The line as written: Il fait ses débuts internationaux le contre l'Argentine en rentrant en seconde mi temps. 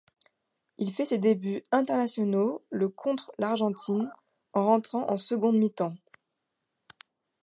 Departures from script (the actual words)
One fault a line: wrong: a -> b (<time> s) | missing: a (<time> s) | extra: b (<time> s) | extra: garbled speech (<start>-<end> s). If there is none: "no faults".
no faults